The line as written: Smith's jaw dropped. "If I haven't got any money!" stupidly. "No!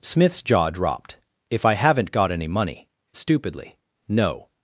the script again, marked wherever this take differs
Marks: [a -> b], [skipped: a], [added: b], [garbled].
Smith's jaw dropped. "If I haven't got any money!" stupidly. "No!